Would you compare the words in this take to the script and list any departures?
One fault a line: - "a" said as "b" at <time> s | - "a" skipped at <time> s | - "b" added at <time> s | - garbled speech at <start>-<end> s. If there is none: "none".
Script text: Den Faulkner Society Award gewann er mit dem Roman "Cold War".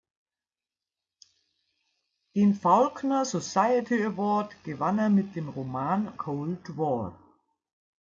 none